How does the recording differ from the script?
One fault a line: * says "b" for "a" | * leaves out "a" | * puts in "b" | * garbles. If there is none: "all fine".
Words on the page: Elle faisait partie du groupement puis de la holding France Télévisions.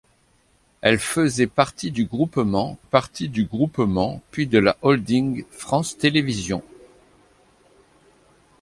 * puts in "partie du groupement"